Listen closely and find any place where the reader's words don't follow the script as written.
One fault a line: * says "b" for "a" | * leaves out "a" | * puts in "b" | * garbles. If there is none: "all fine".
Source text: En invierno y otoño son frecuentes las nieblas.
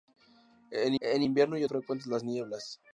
* puts in "en"
* leaves out "otoño son"